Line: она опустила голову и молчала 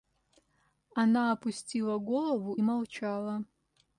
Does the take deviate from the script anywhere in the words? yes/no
yes